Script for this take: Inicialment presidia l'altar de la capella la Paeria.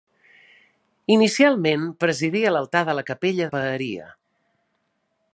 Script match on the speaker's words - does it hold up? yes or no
yes